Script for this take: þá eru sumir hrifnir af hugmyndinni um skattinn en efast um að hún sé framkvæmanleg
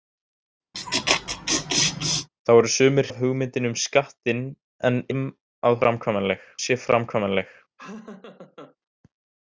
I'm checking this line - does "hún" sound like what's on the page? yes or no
no